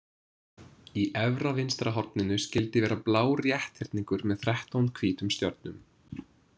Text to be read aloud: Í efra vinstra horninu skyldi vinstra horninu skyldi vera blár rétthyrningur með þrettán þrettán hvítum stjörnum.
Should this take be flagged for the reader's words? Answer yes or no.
yes